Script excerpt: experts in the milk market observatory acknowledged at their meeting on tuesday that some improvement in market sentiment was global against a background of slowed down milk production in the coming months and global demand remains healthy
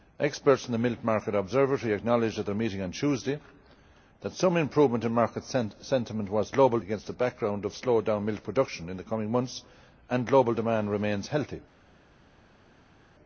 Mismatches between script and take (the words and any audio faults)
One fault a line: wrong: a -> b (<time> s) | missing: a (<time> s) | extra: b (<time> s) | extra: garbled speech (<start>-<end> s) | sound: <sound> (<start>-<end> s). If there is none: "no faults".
no faults